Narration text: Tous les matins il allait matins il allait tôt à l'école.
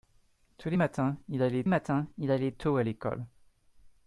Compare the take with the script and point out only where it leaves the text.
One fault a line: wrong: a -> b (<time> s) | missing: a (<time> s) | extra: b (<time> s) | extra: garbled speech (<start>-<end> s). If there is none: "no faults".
no faults